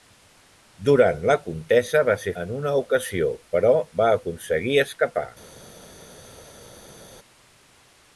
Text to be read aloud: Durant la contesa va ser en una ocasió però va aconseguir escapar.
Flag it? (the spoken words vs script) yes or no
no